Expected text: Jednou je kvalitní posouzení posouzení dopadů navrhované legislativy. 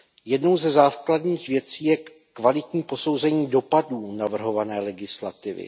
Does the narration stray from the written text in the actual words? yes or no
yes